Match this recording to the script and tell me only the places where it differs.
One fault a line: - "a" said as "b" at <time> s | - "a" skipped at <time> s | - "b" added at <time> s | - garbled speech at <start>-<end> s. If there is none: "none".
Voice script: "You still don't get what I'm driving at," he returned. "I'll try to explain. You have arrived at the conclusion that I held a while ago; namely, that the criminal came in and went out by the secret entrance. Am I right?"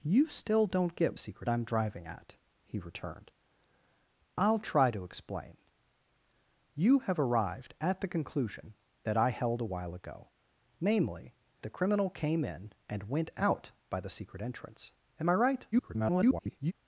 - "what" said as "secret" at 1.2 s
- "that" skipped at 11.3 s
- garbled speech at 15.7-16.7 s